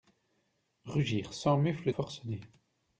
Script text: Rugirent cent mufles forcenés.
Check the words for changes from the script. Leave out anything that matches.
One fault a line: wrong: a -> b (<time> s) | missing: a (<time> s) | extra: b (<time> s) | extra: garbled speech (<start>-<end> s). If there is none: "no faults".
no faults